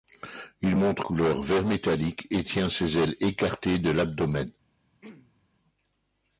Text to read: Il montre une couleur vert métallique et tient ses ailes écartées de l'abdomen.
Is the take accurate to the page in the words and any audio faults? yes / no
no